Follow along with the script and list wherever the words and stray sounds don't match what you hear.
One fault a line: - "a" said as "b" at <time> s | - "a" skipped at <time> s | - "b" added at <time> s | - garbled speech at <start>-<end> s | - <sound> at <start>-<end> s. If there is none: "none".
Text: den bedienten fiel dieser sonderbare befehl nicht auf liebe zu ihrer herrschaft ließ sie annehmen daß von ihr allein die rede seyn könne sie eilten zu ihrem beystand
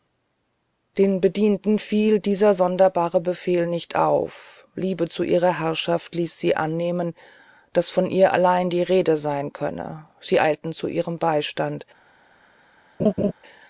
- laugh at 13.0-13.3 s